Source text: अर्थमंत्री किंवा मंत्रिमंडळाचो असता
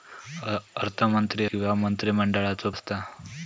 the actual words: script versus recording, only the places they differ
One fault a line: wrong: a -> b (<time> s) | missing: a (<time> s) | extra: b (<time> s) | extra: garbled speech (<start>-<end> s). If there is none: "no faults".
no faults